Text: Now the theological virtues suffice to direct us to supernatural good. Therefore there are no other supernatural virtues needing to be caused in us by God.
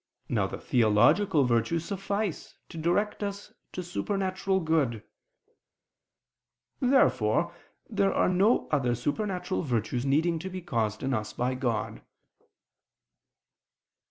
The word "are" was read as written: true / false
true